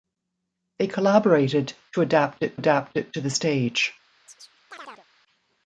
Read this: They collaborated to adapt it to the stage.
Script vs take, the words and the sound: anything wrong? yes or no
yes